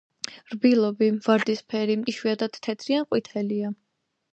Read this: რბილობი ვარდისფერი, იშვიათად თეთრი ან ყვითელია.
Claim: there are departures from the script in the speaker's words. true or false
false